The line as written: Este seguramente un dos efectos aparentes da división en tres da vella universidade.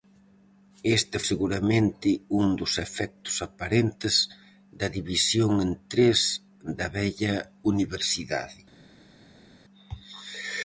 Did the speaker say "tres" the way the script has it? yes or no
yes